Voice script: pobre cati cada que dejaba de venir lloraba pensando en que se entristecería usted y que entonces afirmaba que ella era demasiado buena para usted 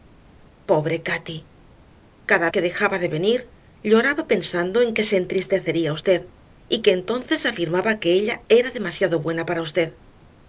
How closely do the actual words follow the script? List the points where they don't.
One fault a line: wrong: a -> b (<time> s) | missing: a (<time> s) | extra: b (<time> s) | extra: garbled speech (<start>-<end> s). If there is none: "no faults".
no faults